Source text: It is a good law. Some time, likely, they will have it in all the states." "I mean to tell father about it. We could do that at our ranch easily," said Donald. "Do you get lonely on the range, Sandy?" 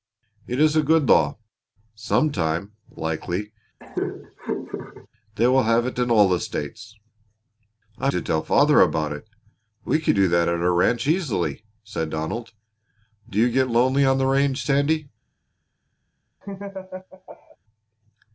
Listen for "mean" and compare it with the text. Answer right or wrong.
wrong